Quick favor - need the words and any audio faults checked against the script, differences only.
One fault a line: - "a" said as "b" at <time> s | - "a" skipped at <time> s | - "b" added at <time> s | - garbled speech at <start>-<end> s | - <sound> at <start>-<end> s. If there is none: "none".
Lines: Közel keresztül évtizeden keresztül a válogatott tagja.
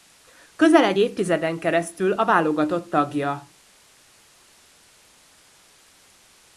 - "keresztül" said as "egy" at 0.8 s